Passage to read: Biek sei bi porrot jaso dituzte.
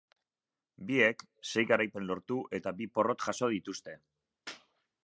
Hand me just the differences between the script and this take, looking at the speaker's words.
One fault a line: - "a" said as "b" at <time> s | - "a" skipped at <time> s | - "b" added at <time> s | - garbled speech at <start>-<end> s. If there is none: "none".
- "garaipen lortu eta" added at 1.7 s